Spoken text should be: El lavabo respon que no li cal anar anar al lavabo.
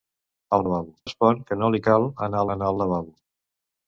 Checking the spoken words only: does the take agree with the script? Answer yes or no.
yes